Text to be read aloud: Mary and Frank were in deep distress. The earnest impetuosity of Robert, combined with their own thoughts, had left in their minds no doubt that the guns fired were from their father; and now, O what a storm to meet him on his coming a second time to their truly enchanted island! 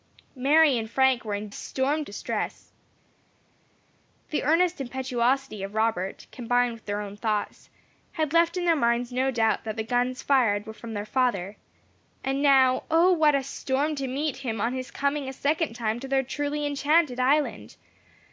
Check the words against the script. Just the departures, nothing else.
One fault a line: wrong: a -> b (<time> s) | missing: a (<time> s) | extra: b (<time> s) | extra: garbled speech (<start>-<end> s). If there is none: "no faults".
wrong: deep -> storm (1.5 s)